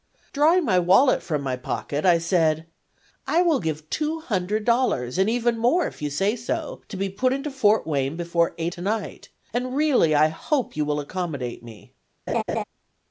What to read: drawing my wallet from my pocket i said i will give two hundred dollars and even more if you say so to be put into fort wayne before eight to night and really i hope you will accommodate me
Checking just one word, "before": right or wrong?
right